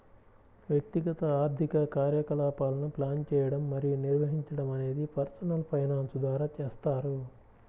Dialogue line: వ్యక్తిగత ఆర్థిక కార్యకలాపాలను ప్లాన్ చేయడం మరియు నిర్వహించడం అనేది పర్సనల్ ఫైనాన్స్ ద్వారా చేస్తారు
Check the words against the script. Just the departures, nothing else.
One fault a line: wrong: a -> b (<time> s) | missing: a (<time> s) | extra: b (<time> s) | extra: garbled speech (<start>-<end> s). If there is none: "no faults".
no faults